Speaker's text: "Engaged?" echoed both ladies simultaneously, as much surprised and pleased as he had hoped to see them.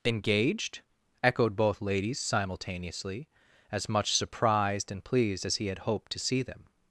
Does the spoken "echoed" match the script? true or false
true